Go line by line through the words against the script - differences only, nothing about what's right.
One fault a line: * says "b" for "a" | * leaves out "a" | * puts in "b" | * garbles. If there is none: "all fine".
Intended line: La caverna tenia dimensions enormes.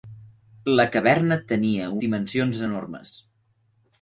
all fine